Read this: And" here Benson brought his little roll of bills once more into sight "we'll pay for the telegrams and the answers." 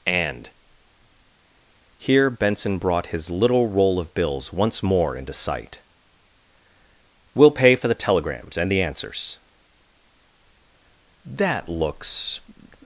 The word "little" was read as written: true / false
true